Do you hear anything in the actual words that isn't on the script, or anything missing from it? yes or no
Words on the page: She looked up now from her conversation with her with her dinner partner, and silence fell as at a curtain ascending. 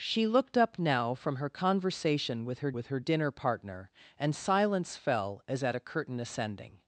no